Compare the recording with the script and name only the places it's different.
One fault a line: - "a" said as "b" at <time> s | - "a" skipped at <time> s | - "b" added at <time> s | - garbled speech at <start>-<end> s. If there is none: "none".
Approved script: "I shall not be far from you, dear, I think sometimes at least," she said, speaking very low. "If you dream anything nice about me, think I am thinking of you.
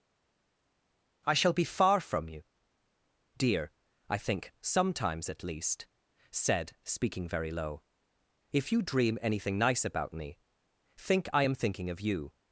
- "not" skipped at 1.5 s
- "she" skipped at 5.9 s